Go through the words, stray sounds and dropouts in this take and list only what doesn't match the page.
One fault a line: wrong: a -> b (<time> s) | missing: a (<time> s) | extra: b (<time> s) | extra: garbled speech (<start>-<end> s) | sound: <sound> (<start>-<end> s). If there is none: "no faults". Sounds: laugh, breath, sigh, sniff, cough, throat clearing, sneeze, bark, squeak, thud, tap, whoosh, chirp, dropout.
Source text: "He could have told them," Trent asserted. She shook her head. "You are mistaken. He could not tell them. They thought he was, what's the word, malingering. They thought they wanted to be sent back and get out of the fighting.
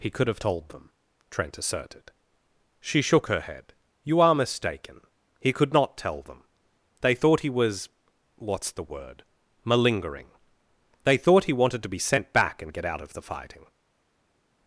wrong: they -> he (11.4 s)